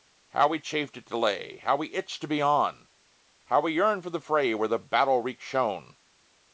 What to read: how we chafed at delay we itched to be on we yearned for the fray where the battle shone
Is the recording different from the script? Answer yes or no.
yes